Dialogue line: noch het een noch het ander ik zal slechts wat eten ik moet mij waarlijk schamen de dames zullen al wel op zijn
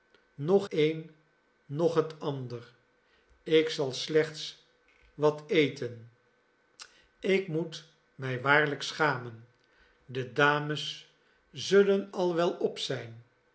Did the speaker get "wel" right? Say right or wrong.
right